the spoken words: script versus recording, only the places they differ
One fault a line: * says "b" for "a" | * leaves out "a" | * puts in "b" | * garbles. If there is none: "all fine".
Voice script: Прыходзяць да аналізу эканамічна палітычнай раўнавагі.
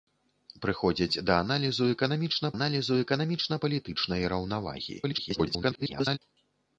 * puts in "аналізу эканамічна"
* garbles